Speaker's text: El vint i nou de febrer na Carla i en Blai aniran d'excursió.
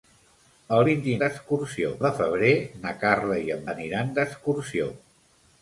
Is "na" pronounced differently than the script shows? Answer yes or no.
no